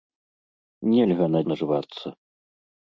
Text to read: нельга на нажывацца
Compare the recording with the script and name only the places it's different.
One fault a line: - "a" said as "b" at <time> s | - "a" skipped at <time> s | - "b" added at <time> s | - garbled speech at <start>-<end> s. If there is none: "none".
none